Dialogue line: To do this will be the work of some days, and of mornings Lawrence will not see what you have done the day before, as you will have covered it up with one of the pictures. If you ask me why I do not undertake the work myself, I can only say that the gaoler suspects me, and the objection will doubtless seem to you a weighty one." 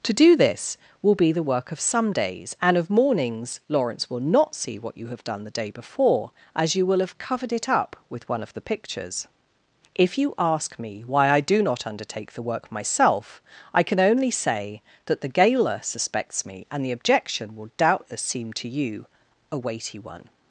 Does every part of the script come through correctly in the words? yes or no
yes